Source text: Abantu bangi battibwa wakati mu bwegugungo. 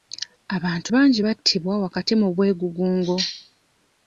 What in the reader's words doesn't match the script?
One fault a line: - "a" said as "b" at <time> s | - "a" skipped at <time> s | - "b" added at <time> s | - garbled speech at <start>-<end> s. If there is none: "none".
none